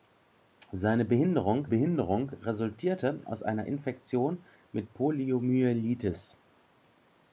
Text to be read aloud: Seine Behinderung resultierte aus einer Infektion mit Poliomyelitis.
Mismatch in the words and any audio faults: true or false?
true